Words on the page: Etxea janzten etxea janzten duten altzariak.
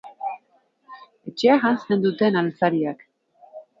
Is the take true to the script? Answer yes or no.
no